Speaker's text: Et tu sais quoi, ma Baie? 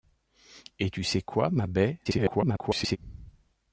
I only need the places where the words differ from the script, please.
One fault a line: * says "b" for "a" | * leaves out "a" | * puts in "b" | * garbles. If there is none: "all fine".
* garbles